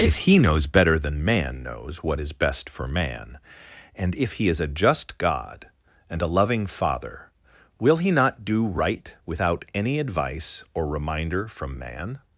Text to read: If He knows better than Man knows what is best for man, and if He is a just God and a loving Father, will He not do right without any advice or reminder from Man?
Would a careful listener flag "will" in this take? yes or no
no